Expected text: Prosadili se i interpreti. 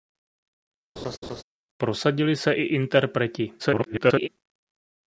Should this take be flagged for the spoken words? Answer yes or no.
yes